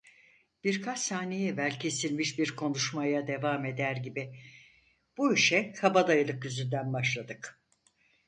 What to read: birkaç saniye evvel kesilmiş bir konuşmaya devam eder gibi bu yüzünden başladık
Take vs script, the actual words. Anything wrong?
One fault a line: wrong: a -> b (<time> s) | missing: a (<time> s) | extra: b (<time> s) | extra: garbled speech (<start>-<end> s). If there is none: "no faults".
extra: işe kabadayılık (5.3 s)